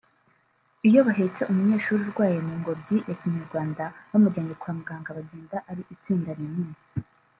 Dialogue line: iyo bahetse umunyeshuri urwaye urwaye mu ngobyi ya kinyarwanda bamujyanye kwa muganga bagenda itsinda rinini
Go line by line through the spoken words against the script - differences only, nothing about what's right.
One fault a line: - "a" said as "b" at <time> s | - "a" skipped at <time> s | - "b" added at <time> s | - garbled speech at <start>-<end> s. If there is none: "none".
- "urwaye" skipped at 2.4 s
- "ari" added at 5.7 s